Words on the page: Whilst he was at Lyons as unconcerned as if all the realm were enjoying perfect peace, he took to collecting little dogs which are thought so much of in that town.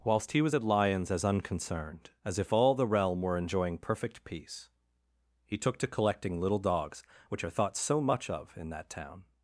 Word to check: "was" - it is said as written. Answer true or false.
true